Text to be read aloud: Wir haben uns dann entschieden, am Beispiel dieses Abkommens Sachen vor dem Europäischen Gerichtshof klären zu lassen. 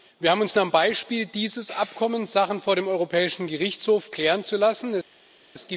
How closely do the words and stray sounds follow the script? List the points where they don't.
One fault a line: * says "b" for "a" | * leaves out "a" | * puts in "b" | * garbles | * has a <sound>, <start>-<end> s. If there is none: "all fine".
* leaves out "dann entschieden"